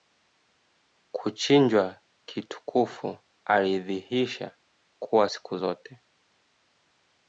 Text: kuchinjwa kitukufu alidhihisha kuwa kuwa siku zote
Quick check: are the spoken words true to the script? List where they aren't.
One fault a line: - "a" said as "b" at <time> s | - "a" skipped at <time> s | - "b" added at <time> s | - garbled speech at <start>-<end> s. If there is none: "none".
- "kuwa" skipped at 5.3 s